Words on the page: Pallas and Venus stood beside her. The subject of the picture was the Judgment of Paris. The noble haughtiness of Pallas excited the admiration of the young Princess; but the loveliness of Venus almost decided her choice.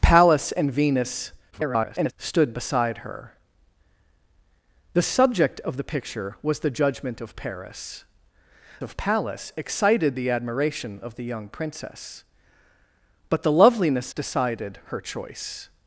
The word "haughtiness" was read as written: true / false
false